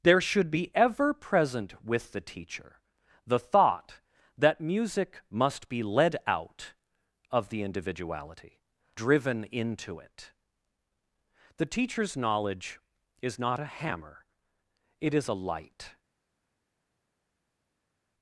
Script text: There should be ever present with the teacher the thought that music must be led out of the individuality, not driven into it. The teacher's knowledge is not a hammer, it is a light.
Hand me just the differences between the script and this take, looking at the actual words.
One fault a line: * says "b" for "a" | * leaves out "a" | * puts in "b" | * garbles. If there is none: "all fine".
* leaves out "not"